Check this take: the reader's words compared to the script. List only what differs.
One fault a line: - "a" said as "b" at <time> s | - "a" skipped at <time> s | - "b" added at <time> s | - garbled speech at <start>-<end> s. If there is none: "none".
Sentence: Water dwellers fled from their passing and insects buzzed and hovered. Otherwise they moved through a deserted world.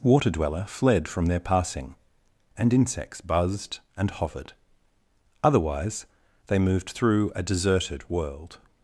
- "dwellers" said as "dweller" at 0.3 s